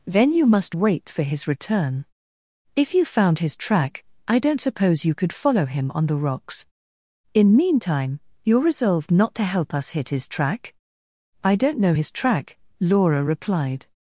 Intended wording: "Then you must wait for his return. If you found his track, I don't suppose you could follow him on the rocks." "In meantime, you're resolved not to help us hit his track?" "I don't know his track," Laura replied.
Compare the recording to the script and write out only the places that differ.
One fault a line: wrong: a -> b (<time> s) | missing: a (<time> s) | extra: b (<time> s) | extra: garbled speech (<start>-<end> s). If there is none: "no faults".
no faults